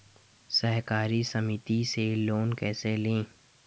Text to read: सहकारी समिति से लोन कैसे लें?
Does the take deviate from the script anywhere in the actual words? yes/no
no